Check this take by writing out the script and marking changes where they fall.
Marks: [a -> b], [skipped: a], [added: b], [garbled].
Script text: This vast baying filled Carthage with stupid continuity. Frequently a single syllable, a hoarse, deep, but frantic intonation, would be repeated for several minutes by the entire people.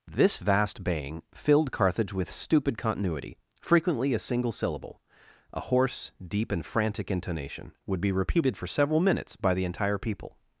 This vast baying filled Carthage with stupid continuity. Frequently a single syllable, a hoarse, deep, [but -> and] frantic intonation, would be repeated for several minutes by the entire people.